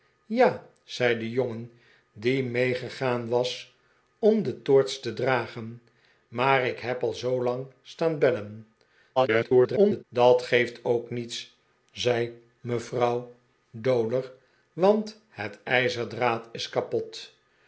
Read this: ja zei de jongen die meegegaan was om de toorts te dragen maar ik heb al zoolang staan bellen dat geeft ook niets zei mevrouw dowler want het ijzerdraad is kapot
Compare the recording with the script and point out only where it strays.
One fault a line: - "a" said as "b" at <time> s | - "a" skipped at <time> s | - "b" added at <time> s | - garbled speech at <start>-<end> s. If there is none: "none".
- garbled speech at 9.2-10.0 s